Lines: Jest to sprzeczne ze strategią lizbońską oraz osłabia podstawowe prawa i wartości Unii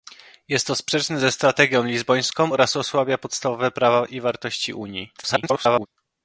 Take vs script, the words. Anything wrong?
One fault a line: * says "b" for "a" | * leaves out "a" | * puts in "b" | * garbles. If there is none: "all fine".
* garbles